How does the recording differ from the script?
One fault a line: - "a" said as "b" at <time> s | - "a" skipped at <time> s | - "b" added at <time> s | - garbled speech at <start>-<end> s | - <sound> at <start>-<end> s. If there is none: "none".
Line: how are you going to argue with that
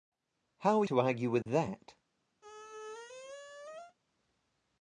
- "you going" skipped at 0.8 s
- dropout at 1.4-1.5 s
- squeak at 2.4-4.0 s